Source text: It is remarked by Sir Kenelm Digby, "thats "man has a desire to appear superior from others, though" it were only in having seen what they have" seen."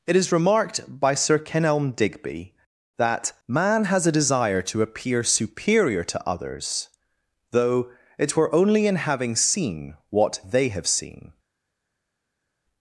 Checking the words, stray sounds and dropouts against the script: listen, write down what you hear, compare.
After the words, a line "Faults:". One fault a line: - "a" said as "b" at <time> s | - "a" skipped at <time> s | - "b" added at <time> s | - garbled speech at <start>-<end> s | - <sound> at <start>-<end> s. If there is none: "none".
It is remarked by Sir Kenelm Digby, "that "man has a desire to appear superior to others, though" it were only in having seen what they have" seen."
Faults:
- "thats" said as "that" at 3.0 s
- "from" said as "to" at 6.0 s